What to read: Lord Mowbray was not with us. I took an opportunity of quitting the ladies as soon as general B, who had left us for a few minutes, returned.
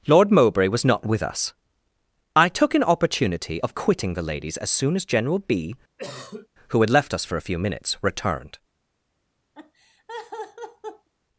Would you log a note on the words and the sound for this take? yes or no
yes